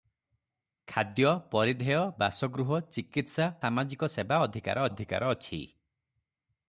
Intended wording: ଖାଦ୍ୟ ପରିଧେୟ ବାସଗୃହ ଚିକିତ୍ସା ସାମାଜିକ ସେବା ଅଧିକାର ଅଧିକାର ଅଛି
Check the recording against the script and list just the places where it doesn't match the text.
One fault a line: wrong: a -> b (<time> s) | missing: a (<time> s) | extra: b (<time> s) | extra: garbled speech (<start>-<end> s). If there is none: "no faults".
no faults